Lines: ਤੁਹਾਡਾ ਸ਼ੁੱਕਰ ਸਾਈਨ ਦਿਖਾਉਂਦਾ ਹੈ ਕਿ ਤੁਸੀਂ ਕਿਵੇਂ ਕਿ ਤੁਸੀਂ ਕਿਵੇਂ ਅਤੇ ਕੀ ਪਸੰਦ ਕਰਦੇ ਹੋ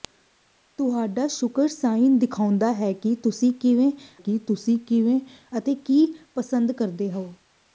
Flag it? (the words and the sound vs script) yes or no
no